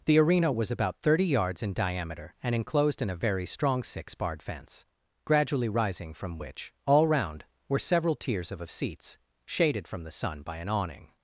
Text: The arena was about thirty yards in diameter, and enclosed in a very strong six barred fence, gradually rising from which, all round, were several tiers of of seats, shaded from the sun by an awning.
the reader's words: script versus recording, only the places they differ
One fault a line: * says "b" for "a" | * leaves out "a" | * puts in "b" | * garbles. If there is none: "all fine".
all fine